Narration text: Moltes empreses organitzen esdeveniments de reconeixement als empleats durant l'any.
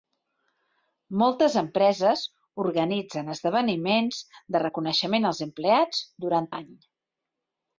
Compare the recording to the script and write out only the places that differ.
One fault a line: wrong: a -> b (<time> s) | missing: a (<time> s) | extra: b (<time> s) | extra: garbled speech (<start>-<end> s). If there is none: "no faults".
no faults